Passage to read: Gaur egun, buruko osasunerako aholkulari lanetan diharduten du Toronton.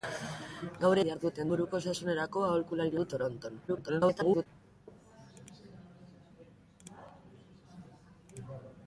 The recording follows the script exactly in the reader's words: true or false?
false